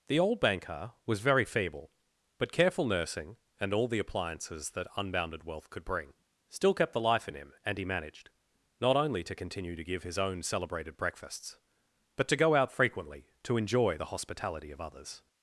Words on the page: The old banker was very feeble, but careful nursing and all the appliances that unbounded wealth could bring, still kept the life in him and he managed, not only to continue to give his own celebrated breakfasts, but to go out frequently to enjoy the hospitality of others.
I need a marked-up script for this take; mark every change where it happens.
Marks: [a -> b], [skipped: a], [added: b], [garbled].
The old banker was very feeble, but careful nursing and all the appliances that unbounded wealth could bring, still kept the life in him and he managed, not only to continue to give his own celebrated breakfasts, but to go out frequently to enjoy the hospitality of others.